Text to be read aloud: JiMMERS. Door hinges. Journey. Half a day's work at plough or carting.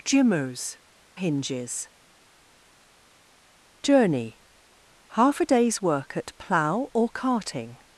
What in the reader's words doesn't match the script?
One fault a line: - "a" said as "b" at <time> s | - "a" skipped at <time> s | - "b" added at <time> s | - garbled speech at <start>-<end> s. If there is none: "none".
- "Door" skipped at 0.8 s